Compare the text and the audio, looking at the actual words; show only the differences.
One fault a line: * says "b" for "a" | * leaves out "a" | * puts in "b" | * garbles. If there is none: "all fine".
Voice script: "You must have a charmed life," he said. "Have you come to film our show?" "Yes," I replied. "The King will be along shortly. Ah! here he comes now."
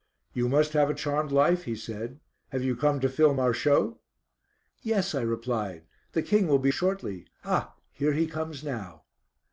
* leaves out "along"